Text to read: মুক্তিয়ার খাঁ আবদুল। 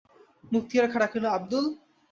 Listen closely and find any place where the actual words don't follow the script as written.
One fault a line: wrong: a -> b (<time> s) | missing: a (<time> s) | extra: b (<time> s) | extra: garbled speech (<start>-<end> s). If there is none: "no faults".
extra: ডাকিল (1.0 s)